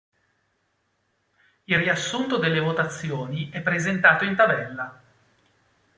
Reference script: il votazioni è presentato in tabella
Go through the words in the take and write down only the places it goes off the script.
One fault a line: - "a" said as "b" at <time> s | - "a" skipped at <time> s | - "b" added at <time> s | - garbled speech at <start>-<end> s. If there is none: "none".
- "riassunto delle" added at 1.8 s